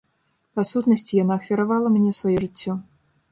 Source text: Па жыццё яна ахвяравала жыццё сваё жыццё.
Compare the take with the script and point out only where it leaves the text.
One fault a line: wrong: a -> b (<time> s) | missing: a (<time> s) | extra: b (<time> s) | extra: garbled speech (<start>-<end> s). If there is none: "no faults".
wrong: жыццё -> сутнасці (0.7 s)
wrong: жыццё -> мне (2.0 s)